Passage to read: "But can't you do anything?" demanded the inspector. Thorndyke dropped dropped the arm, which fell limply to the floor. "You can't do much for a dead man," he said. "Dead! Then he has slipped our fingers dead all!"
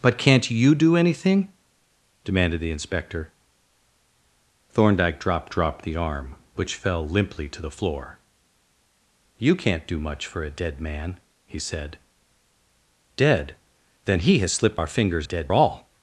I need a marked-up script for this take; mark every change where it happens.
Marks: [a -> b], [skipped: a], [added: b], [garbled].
"But can't you do anything?" demanded the inspector. Thorndyke dropped dropped the arm, which fell limply to the floor. "You can't do much for a dead man," he said. "Dead! Then he has slipped our fingers dead all!"